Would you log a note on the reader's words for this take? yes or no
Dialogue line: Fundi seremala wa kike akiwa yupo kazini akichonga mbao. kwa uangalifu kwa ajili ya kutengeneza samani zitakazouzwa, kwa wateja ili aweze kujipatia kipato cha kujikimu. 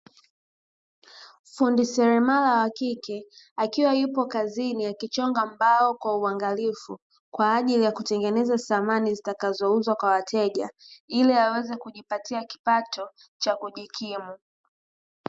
no